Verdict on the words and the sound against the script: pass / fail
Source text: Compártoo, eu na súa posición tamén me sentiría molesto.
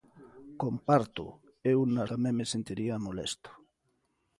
fail